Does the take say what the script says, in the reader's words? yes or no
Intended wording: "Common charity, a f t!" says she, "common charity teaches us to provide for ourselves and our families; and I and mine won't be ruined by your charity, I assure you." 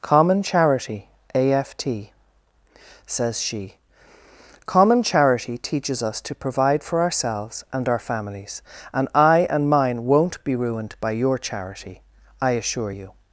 yes